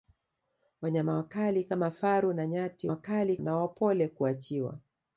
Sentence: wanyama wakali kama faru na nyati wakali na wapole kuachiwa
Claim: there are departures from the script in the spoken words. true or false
false